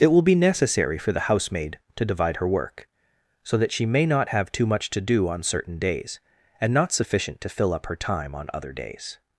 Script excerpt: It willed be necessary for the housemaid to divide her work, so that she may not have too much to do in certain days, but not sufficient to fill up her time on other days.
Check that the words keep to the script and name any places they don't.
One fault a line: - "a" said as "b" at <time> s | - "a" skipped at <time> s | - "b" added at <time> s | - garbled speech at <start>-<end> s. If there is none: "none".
- "willed" said as "will" at 0.1 s
- "in" said as "on" at 5.3 s
- "but" said as "and" at 6.6 s